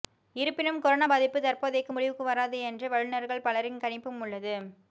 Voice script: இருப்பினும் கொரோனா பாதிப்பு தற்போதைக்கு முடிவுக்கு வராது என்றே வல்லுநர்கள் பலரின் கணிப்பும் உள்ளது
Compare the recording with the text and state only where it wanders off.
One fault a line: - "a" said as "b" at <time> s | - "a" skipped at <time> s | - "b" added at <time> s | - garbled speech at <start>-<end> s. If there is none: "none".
none